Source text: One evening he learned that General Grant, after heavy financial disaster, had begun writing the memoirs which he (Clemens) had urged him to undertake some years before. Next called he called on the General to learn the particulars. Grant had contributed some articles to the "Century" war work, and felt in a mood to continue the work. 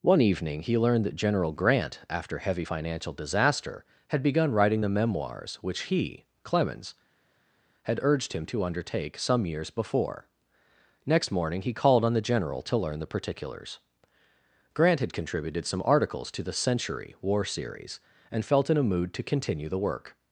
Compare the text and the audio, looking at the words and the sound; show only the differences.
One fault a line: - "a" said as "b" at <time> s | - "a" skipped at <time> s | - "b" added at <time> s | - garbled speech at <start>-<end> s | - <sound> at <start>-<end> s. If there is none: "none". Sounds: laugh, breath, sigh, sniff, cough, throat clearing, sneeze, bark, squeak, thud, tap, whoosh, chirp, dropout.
- "called" said as "morning" at 11.3 s
- "work" said as "series" at 17.5 s